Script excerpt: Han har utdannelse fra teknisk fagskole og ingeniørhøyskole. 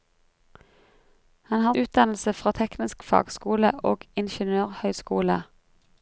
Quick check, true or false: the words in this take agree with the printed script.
true